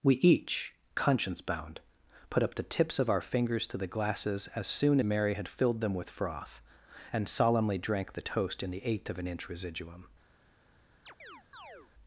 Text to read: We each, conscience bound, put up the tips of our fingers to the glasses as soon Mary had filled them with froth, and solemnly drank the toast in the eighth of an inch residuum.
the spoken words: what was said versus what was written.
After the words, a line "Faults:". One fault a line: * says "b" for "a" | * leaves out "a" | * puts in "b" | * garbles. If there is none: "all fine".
We each, conscience bound, put up the tips of our fingers to the glasses as soon Mary had filled them with froth, and solemnly drank the toast in the eighth of an inch residuum.
Faults:
all fine